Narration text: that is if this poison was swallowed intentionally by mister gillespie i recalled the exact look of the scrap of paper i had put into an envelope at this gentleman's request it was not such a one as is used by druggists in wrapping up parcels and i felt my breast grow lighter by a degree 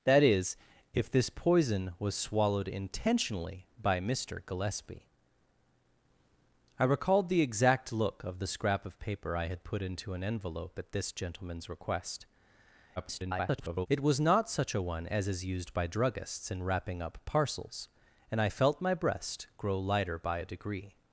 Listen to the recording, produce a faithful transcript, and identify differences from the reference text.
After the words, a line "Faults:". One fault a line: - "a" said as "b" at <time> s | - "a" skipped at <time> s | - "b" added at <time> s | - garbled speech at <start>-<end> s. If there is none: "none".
that is if this poison was swallowed intentionally by mister gillespie i recalled the exact look of the scrap of paper i had put into an envelope at this gentleman's request [garbled] it was not such a one as is used by druggists in wrapping up parcels and i felt my breast grow lighter by a degree
Faults:
- garbled speech at 13.0-13.9 s